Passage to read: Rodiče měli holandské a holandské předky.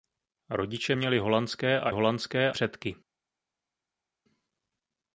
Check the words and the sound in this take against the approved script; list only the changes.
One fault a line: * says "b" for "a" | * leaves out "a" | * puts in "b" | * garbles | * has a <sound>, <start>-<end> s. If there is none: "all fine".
all fine